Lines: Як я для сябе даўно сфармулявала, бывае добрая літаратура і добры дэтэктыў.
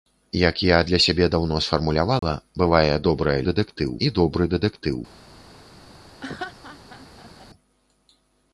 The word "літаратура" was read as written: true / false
false